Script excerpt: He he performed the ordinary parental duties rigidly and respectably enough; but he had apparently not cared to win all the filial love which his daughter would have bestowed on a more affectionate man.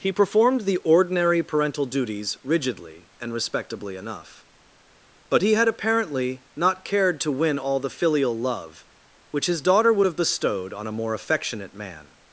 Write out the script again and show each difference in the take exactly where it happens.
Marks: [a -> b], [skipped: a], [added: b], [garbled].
He [skipped: he] performed the ordinary parental duties rigidly and respectably enough; but he had apparently not cared to win all the filial love which his daughter would have bestowed on a more affectionate man.